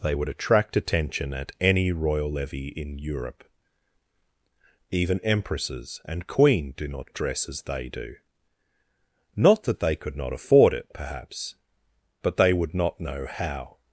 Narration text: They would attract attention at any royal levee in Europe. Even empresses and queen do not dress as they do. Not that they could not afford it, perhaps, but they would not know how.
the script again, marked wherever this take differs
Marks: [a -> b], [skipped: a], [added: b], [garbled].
They would attract attention at any royal levee in Europe. Even empresses and queen do not dress as they do. Not that they could not afford it, perhaps, but they would not know how.